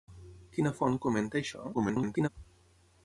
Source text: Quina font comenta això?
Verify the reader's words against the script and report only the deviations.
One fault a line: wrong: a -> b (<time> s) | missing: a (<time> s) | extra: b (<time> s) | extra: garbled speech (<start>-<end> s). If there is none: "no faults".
extra: garbled speech (1.7-2.3 s)